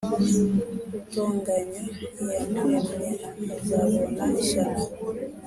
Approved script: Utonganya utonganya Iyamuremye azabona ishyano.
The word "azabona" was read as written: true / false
true